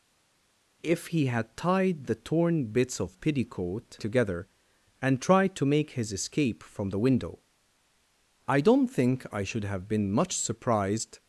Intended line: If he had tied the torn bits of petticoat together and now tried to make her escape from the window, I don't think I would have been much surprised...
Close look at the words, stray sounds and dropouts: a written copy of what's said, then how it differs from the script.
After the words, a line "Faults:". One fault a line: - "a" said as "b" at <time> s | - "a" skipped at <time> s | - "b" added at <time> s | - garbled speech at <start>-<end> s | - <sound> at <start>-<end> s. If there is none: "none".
If he had tied the torn bits of petticoat together and tried to make his escape from the window, I don't think I should have been much surprised...
Faults:
- "now" skipped at 5.2 s
- "her" said as "his" at 5.9 s
- "would" said as "should" at 9.4 s